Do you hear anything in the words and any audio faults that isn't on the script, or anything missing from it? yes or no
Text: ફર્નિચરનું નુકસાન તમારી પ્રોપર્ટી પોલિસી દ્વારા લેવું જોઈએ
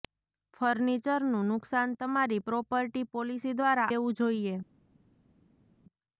no